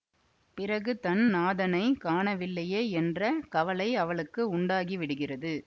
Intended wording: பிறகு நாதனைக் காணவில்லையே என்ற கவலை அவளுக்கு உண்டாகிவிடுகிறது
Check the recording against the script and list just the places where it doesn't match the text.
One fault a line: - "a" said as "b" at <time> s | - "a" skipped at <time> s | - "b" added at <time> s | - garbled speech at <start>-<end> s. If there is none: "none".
- "தன்" added at 1.0 s